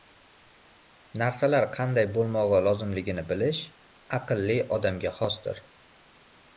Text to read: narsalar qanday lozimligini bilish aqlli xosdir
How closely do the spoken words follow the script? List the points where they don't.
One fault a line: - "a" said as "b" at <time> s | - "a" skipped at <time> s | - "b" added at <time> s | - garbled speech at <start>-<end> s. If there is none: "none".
- "bo‘lmog‘i" added at 2.2 s
- "odamga" added at 4.8 s